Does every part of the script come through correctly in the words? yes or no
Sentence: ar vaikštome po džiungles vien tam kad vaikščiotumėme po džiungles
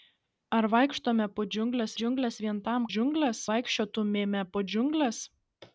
no